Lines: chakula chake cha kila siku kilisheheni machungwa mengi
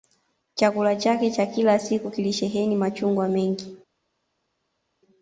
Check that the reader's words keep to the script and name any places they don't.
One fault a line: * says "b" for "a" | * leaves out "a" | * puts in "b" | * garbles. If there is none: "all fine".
all fine